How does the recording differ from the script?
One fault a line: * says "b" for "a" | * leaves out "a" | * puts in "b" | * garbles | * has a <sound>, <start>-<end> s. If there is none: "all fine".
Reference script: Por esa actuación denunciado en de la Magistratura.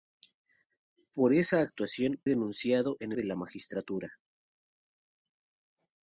all fine